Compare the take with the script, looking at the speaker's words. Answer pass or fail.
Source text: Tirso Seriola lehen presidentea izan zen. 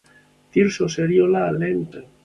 fail